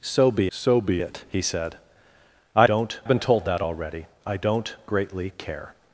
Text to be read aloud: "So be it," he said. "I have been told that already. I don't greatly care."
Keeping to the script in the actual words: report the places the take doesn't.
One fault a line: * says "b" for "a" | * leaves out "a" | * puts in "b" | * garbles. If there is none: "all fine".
* puts in "so be"
* says "don't" for "have"